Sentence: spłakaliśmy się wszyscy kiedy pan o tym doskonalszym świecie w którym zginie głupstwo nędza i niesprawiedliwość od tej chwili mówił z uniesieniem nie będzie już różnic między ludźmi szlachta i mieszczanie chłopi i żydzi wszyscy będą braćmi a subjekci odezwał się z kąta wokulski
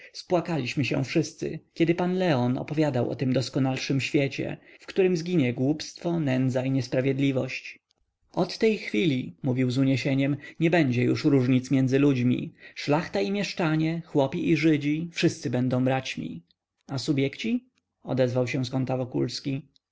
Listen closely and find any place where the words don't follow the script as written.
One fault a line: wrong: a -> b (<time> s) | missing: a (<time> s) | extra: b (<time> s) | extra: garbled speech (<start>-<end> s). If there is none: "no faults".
extra: leon opowiadał (2.2 s)